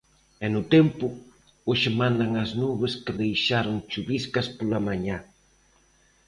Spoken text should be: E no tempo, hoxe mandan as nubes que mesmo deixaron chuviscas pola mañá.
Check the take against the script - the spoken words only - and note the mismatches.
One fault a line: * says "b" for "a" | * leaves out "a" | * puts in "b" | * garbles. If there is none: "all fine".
* leaves out "mesmo"